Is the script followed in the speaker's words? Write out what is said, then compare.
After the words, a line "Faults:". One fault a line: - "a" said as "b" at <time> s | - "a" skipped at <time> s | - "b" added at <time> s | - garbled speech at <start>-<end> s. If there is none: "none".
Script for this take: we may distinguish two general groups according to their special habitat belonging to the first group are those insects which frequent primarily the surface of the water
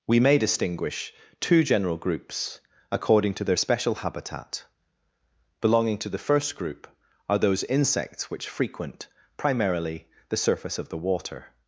we may distinguish two general groups according to their special habitat belonging to the first group are those insects which frequent primarily the surface of the water
Faults:
none